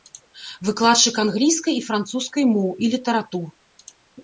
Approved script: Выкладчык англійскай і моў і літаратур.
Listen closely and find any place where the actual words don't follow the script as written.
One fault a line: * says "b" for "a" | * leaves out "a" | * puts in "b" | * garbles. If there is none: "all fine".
* puts in "французскай"